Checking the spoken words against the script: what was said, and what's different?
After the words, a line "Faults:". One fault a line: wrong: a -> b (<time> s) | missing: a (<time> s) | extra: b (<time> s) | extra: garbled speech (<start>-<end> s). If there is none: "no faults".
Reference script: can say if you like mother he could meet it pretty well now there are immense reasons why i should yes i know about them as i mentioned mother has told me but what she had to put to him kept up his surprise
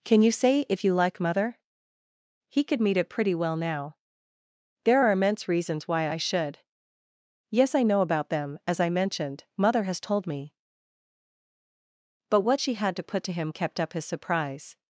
can you say if you like mother he could meet it pretty well now there are immense reasons why i should yes i know about them as i mentioned mother has told me but what she had to put to him kept up his surprise
Faults:
extra: you (0.2 s)